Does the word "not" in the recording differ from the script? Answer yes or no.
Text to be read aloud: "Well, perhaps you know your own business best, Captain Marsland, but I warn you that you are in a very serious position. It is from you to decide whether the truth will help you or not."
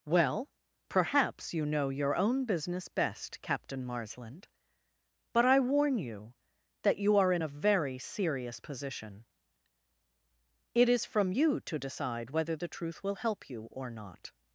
no